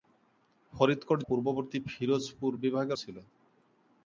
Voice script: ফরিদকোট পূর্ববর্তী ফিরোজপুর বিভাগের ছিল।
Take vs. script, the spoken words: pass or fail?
pass